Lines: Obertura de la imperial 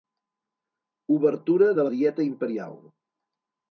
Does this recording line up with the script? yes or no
no